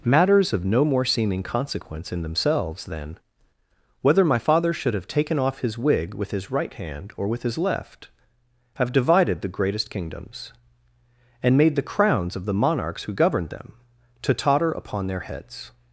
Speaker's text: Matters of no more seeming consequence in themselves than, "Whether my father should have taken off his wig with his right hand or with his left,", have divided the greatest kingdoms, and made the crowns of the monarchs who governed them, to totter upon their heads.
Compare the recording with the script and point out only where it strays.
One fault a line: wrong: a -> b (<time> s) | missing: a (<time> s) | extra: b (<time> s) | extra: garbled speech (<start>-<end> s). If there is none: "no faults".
no faults